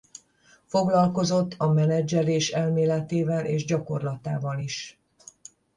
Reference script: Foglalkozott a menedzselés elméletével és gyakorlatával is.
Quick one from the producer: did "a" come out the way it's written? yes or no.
yes